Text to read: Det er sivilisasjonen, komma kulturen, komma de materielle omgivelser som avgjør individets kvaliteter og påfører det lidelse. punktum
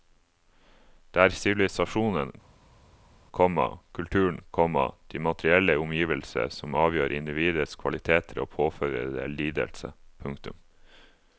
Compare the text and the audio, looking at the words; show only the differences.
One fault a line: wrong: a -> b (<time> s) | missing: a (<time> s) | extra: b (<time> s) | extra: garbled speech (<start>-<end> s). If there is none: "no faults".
no faults